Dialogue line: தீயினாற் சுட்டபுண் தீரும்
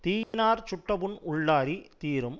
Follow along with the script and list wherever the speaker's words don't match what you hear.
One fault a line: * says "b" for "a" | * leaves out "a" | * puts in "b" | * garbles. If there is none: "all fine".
* puts in "உள்ளாறித்"